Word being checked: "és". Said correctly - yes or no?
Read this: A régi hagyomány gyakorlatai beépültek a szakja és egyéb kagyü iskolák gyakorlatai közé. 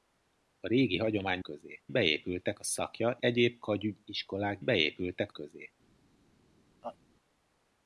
no